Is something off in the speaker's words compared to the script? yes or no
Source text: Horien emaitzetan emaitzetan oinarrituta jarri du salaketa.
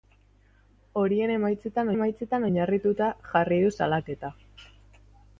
no